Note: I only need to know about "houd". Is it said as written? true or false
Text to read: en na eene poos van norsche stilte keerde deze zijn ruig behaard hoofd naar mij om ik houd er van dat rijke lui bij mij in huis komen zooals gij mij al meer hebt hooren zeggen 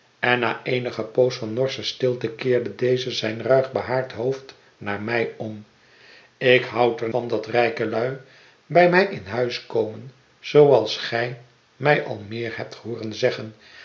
true